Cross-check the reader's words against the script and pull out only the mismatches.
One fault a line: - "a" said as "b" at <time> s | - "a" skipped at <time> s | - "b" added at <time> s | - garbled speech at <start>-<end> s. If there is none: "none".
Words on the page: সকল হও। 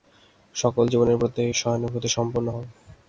- "জীবের প্রতি সহানুভূতিসম্পন্ন" added at 0.9 s